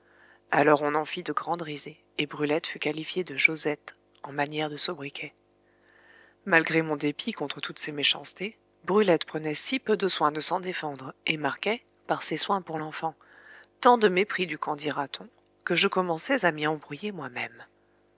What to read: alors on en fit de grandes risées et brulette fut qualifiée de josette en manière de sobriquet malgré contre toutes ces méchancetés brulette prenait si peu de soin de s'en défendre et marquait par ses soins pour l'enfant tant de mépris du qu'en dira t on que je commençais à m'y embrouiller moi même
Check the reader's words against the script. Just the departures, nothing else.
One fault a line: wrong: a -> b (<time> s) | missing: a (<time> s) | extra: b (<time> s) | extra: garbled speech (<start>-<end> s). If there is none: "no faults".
extra: mon dépit (6.8 s)